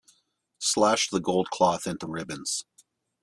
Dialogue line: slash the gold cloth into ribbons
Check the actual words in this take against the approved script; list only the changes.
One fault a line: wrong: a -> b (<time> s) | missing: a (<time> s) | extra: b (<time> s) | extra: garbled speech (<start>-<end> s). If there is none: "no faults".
no faults